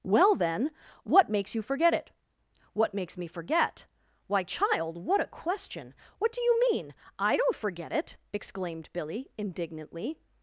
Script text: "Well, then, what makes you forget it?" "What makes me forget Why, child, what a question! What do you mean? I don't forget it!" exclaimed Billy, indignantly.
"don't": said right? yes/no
yes